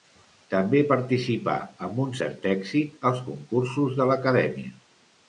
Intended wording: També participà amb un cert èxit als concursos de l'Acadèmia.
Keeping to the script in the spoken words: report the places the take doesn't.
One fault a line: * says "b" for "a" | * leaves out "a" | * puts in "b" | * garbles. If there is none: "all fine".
all fine